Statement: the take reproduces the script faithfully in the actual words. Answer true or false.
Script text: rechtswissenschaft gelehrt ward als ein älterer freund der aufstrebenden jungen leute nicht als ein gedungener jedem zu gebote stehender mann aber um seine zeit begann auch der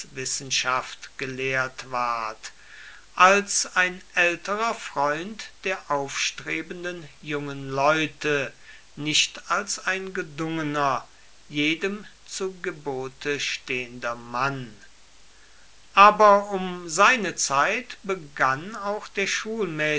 true